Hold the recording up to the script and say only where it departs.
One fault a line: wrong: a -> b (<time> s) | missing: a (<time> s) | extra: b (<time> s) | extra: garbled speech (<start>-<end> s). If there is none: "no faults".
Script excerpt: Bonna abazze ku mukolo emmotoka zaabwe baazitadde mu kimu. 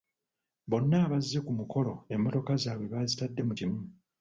no faults